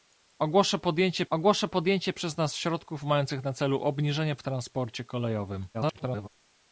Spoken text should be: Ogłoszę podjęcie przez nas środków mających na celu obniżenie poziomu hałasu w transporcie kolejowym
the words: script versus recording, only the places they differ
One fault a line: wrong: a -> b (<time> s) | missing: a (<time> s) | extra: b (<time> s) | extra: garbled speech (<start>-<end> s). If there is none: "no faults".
extra: ogłoszę podjęcie (1.3 s)
missing: poziomu hałasu (4.4 s)
extra: garbled speech (5.7-6.3 s)